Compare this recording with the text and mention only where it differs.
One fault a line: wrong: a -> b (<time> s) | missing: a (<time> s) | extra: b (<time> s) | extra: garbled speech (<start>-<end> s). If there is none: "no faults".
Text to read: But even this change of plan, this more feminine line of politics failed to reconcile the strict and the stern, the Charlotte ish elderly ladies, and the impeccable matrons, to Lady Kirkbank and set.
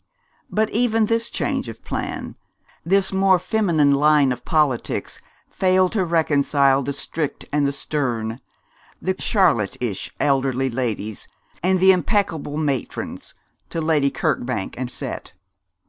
no faults